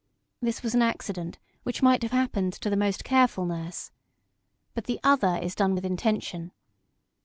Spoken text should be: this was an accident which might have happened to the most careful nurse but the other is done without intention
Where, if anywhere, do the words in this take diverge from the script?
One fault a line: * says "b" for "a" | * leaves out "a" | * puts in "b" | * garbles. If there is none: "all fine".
* says "with" for "without"